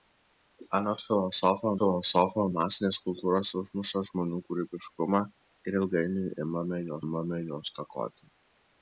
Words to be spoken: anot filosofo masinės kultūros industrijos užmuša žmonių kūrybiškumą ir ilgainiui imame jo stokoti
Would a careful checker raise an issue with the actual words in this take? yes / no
yes